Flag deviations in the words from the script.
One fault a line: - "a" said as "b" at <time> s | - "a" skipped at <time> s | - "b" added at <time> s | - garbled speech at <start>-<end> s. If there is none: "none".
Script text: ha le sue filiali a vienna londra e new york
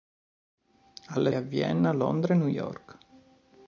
- "sue filiali" skipped at 1.3 s